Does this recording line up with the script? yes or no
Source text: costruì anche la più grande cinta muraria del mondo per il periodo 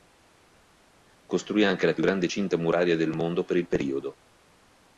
yes